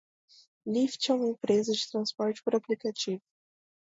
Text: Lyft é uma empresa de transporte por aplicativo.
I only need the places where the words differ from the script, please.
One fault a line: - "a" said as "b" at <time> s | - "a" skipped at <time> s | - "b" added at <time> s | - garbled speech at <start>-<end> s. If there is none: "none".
none